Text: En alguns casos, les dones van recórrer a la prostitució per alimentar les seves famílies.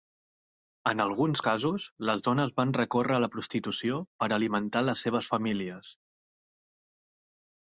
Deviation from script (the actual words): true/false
false